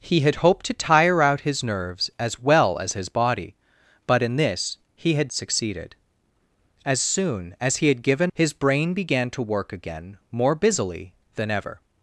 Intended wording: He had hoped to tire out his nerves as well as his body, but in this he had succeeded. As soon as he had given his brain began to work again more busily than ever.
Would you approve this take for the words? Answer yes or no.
yes